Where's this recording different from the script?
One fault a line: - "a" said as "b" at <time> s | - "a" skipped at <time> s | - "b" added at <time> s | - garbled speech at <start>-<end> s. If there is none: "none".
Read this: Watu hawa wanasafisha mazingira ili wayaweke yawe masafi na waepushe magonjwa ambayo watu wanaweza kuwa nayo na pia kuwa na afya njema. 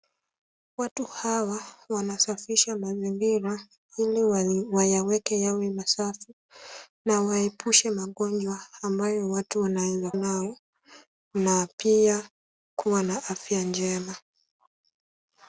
- "kuwa" skipped at 10.1 s